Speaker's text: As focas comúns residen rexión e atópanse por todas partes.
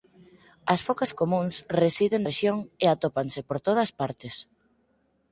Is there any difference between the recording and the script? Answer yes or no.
no